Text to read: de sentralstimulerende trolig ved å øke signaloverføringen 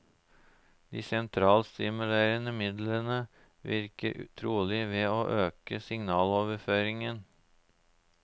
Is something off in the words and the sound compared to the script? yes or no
yes